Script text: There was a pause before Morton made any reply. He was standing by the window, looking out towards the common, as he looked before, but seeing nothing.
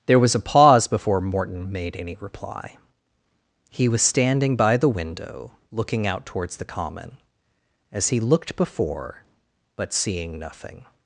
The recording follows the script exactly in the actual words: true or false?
true